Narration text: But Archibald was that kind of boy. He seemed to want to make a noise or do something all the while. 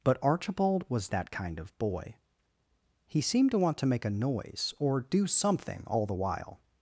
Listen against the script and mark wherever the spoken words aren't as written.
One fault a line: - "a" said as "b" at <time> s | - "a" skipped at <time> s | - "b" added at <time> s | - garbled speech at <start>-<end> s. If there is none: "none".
none